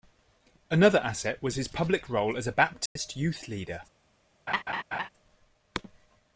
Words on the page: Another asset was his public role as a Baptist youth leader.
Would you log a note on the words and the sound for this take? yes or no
yes